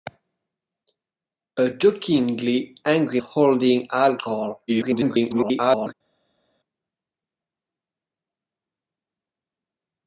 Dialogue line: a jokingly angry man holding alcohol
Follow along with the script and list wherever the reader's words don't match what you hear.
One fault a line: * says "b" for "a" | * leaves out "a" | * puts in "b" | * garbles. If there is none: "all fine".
* leaves out "man"
* garbles